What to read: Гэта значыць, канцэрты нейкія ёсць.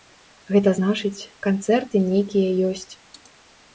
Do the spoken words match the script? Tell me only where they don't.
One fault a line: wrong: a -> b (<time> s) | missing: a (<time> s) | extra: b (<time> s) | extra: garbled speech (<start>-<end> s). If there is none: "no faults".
no faults